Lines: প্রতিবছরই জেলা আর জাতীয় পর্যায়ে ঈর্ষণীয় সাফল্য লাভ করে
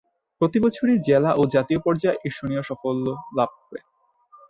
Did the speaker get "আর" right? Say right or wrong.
wrong